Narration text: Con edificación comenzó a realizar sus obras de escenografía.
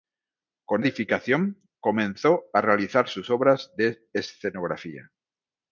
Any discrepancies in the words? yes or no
no